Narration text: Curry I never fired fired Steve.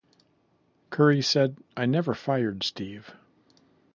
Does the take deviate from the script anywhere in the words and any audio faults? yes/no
yes